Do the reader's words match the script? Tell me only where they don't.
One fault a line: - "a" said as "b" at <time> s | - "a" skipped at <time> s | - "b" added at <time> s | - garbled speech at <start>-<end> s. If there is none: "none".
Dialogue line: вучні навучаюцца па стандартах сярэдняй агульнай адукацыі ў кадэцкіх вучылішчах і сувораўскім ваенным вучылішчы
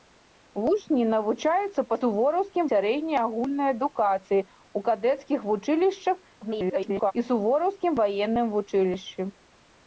- "стандартах" said as "сувораўскім" at 2.0 s
- garbled speech at 6.4-7.1 s